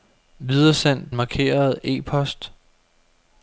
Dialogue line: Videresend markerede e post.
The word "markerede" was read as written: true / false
true